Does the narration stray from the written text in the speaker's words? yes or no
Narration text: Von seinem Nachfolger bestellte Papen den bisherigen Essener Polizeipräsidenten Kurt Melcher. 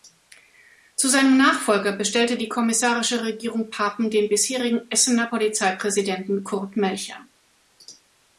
yes